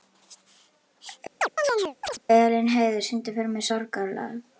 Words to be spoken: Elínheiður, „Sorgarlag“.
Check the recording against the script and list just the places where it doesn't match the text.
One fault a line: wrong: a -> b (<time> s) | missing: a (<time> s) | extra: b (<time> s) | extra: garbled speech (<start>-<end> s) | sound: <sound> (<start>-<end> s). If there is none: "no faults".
sound: chirp (1.4-2.2 s)
extra: syngdu fyrir mig (3.1 s)